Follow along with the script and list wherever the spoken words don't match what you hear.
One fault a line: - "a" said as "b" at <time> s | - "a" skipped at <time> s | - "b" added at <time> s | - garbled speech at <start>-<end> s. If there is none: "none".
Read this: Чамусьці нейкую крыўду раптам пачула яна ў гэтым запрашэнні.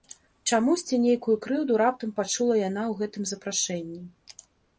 none